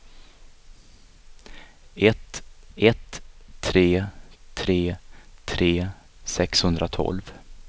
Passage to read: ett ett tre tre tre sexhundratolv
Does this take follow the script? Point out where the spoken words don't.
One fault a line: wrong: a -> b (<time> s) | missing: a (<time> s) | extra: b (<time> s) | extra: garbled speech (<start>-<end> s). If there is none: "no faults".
no faults